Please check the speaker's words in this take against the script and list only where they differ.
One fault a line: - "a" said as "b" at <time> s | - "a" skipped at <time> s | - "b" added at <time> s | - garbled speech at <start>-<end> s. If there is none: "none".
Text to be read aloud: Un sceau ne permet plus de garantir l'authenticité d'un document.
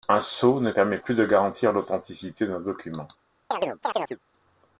none